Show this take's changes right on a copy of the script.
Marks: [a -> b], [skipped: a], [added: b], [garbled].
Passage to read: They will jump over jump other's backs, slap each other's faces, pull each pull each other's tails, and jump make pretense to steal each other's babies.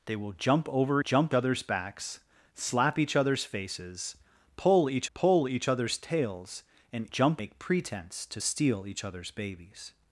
They will jump over jump other's backs, slap each other's faces, pull each pull each other's tails, and jump make pretense to steal each other's babies.